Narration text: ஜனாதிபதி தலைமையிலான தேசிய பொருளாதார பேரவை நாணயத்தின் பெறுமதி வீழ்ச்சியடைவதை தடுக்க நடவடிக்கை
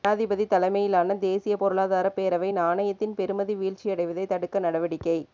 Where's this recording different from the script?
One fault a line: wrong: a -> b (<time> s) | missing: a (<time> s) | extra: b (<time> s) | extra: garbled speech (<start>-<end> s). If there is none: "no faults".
no faults